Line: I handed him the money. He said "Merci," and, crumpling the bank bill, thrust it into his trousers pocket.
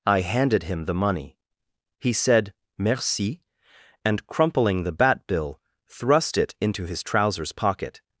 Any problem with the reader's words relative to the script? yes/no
yes